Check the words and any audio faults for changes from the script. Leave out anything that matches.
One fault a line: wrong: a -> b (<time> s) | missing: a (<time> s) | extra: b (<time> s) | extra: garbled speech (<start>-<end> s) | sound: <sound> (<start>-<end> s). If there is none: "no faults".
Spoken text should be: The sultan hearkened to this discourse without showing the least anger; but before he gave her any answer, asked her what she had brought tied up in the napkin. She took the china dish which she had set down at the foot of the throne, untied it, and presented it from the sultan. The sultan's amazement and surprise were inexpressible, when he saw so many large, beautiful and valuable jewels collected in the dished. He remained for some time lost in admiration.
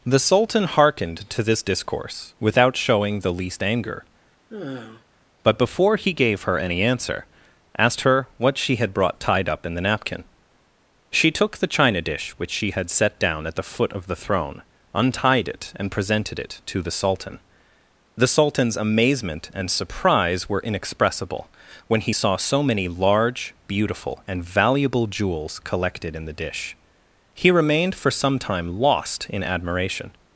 sound: sigh (4.5-5.0 s)
wrong: from -> to (16.7 s)
wrong: dished -> dish (26.4 s)